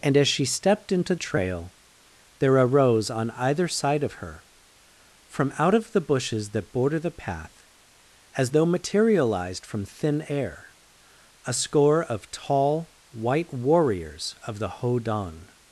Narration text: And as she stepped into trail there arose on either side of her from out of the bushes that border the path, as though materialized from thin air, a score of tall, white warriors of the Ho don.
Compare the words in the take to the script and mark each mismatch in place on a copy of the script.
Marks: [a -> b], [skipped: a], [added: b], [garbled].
And as she stepped into trail there arose on either side of her from out of the bushes that border the path, as though materialized from thin air, a score of tall, white warriors of the Ho don.